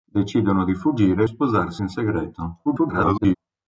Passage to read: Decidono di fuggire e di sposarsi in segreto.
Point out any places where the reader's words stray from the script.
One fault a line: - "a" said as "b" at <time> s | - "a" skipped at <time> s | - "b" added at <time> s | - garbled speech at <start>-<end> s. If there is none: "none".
- "di" skipped at 1.3 s
- garbled speech at 2.6-3.4 s